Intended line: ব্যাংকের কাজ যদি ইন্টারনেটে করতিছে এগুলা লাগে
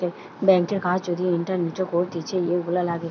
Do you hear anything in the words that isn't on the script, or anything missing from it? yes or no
no